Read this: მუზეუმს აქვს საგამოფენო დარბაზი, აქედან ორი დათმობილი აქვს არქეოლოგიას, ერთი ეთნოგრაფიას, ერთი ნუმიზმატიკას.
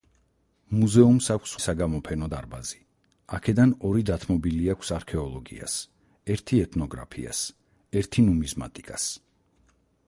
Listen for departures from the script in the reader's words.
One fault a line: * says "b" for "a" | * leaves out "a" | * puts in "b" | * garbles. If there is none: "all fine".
all fine